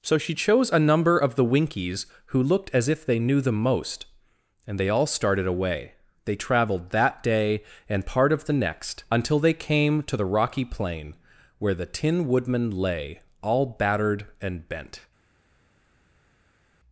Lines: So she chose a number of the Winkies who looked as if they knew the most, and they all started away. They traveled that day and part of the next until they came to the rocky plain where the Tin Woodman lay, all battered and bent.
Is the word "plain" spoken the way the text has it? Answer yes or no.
yes